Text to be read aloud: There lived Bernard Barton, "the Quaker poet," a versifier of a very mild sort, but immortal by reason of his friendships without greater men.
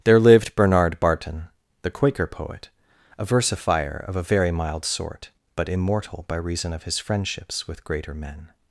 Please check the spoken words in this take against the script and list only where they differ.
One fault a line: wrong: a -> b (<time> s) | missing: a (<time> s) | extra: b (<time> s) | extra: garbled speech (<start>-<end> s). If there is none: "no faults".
wrong: without -> with (7.7 s)